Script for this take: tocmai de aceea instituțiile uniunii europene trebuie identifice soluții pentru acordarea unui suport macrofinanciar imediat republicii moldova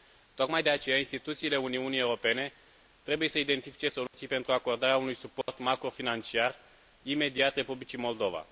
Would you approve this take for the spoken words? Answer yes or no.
no